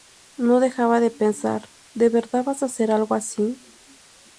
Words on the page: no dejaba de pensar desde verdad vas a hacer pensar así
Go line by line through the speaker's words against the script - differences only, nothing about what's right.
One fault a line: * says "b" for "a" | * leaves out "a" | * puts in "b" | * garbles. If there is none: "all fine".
* says "de" for "desde"
* says "algo" for "pensar"